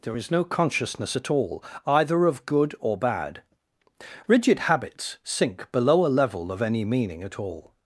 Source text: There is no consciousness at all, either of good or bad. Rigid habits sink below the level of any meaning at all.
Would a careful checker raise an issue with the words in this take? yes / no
yes